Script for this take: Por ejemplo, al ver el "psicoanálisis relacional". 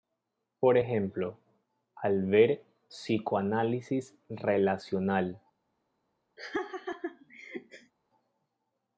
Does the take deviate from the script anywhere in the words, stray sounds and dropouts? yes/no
yes